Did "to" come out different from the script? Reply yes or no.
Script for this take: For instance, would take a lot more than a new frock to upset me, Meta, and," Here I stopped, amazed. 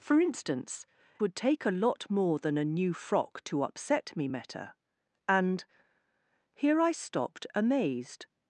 no